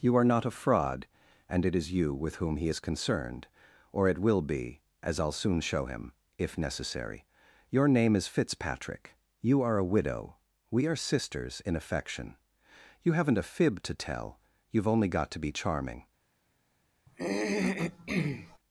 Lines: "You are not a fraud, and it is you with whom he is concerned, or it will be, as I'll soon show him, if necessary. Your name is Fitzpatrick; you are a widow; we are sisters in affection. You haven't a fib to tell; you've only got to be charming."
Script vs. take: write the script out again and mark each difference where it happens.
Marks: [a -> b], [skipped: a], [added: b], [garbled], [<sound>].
"You are not a fraud, and it is you with whom he is concerned, or it will be, as I'll soon show him, if necessary. Your name is Fitzpatrick; you are a widow; we are sisters in affection. You haven't a fib to tell; you've only got to be charming." [throat clearing]